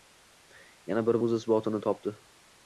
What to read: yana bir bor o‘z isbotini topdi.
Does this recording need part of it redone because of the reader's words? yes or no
yes